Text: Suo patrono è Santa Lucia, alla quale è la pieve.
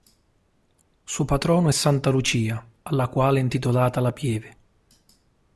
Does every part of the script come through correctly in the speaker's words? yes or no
no